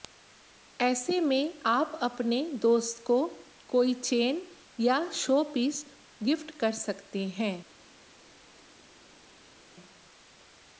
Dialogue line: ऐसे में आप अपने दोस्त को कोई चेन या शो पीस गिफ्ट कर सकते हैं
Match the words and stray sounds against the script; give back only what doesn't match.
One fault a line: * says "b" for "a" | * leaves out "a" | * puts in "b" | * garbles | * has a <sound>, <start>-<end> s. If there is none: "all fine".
all fine